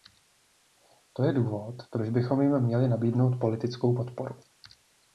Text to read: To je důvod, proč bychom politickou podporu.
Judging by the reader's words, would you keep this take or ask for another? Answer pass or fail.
fail